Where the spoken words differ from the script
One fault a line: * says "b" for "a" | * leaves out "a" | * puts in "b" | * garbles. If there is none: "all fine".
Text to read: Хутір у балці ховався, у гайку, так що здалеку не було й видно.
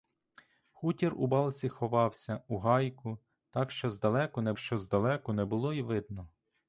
* puts in "що здалеку не"